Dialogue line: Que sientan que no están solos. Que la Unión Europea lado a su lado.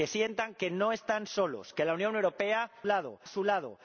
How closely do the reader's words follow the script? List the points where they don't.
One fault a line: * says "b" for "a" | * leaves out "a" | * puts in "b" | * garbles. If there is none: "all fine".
all fine